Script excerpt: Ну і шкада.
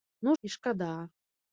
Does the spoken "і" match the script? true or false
true